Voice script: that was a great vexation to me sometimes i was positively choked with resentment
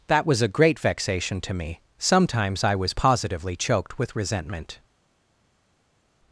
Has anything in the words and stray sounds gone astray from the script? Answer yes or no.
no